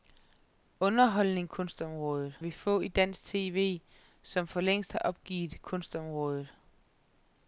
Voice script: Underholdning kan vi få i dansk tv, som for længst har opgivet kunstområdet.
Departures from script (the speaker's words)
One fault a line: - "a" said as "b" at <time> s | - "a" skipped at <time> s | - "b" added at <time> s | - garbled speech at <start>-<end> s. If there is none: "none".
- "kan" said as "kunstområdet" at 1.5 s